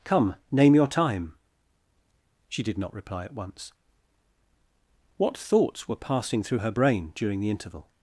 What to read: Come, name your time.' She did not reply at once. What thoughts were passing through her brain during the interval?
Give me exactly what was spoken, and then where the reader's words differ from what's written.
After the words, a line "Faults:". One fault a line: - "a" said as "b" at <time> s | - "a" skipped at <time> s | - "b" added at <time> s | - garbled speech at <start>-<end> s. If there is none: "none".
Come, name your time.' She did not reply at once. What thoughts were passing through her brain during the interval?
Faults:
none